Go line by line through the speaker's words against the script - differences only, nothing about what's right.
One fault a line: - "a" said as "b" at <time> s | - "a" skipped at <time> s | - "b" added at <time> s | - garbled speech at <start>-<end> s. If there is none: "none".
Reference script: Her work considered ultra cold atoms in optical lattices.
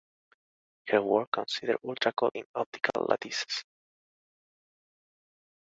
- "atoms" skipped at 2.3 s